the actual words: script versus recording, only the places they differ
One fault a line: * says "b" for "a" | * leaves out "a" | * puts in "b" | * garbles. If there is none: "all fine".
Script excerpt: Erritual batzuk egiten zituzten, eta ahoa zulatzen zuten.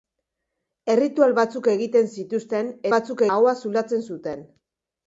* says "batzuk" for "eta"